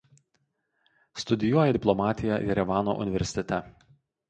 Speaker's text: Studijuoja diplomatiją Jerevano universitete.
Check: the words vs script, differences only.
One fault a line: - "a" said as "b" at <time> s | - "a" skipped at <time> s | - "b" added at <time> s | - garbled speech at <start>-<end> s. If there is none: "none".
none